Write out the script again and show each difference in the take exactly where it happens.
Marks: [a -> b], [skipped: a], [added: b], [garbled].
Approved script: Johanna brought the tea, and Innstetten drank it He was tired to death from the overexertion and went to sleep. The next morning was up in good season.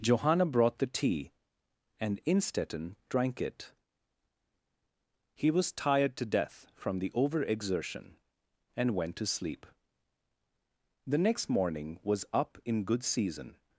Johanna brought the tea, and Innstetten drank it He was tired to death from the overexertion and went to sleep. The next morning was up in good season.